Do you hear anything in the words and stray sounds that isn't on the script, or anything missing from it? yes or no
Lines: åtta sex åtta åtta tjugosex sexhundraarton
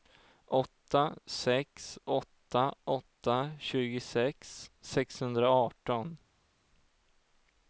no